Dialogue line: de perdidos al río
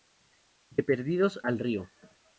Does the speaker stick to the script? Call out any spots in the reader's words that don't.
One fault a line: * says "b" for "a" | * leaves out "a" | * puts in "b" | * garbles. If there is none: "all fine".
all fine